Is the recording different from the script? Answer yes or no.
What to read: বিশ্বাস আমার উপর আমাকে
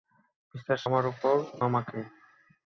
no